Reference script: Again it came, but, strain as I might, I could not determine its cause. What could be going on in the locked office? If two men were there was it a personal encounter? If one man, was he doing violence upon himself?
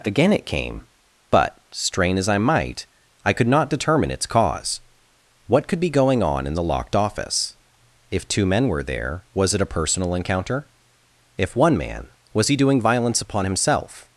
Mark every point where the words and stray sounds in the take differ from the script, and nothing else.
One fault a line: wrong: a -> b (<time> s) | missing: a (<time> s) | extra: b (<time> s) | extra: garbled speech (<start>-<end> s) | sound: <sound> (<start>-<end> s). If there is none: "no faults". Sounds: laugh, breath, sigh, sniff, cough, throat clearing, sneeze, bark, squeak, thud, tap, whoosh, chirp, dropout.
no faults